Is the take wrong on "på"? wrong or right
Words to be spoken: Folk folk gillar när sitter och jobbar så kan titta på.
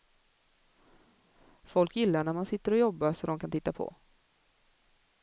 right